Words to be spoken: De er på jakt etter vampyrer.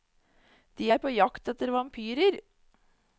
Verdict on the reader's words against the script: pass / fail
pass